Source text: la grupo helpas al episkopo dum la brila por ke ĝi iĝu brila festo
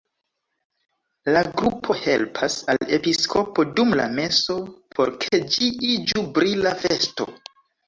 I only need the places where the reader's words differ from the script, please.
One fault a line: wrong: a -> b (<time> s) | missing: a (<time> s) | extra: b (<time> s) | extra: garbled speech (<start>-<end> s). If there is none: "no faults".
wrong: brila -> meso (4.2 s)